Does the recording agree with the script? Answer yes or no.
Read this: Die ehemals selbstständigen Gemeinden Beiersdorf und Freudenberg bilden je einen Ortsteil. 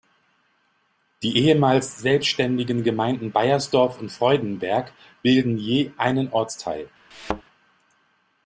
yes